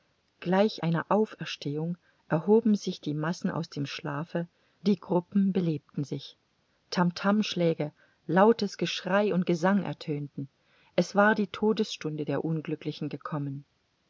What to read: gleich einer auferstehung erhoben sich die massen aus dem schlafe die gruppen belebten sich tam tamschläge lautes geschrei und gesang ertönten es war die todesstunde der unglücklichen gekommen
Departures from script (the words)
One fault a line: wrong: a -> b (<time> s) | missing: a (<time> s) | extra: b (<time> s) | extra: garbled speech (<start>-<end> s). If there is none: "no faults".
no faults